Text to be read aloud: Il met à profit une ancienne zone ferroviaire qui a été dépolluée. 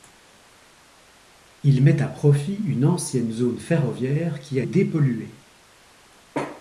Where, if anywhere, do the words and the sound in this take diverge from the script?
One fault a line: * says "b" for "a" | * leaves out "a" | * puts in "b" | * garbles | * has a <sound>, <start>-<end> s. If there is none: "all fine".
* leaves out "été"